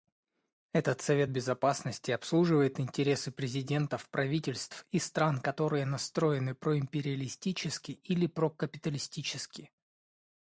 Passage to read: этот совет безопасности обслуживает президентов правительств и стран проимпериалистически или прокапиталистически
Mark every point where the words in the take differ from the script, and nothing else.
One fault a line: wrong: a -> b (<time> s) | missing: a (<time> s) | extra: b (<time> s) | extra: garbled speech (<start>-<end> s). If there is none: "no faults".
extra: интересы (2.8 s)
extra: которые настроены (5.4 s)